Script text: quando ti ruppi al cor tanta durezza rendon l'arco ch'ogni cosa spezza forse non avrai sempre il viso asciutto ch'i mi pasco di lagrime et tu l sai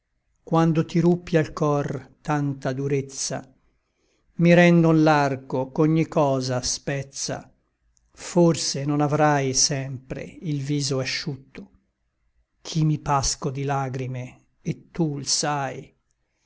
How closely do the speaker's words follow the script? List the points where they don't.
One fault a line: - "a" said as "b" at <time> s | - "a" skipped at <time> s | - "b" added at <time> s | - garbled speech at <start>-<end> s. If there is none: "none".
- "mi" added at 4.4 s